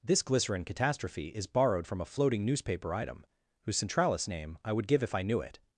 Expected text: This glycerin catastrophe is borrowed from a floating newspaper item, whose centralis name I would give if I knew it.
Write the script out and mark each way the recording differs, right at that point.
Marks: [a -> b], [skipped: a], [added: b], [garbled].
This glycerin catastrophe is borrowed from a floating newspaper item, whose centralis name I would give if I knew it.